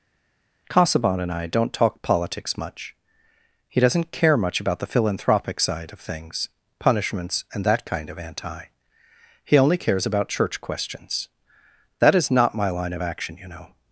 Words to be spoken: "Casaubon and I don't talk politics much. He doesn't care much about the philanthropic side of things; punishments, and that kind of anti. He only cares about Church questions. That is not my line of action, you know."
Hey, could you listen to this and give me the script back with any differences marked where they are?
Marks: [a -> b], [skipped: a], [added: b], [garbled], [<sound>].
"Casaubon and I don't talk politics much. He doesn't care much about the philanthropic side of things; punishments, and that kind of anti. He only cares about Church questions. That is not my line of action, you know."